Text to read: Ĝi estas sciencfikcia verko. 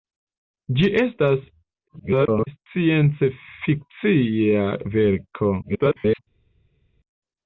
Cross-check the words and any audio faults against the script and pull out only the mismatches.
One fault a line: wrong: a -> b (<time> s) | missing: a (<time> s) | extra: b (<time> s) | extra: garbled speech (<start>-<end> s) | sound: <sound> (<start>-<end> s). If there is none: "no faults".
extra: garbled speech (1.9-2.5 s)
extra: garbled speech (5.6-6.2 s)